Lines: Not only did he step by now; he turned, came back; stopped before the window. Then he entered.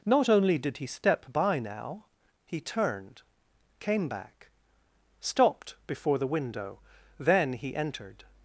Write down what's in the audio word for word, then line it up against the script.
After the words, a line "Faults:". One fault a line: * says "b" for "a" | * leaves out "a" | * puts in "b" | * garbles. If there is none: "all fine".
Not only did he step by now; he turned, came back; stopped before the window. Then he entered.
Faults:
all fine